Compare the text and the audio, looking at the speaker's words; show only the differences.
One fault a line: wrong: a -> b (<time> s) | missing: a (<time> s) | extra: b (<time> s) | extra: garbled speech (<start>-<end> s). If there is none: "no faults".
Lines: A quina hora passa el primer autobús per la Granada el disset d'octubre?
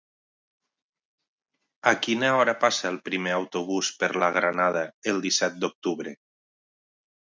no faults